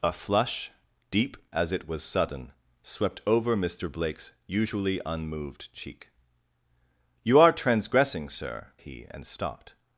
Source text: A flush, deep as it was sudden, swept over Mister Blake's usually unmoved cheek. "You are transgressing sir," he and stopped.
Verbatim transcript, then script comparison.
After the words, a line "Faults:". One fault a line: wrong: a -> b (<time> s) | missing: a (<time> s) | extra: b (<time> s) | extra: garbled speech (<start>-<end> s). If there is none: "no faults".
A flush, deep as it was sudden, swept over Mister Blake's usually unmoved cheek. "You are transgressing sir," he and stopped.
Faults:
no faults